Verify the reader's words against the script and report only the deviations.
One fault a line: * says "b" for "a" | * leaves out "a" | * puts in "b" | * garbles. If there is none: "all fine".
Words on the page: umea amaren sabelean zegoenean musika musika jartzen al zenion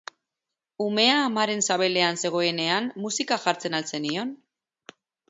* leaves out "musika"